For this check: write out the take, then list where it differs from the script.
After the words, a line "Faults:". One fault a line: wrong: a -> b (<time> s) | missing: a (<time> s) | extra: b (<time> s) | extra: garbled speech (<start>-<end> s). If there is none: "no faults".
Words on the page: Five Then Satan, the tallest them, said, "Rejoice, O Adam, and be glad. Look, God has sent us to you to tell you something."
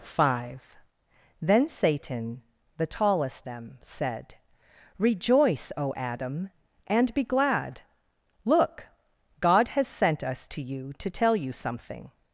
Five Then Satan, the tallest them, said, "Rejoice, O Adam, and be glad. Look, God has sent us to you to tell you something."
Faults:
no faults